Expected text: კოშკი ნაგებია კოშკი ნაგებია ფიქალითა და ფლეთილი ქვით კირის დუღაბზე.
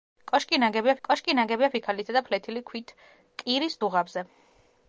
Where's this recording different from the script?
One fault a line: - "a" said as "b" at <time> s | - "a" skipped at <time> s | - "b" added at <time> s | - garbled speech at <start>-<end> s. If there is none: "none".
none